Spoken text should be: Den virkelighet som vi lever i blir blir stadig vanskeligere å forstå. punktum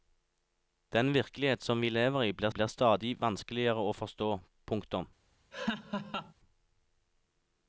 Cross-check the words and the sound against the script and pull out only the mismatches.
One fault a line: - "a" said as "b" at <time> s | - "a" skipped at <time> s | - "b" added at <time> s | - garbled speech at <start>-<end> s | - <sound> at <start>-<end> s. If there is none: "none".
- laugh at 5.5-6.3 s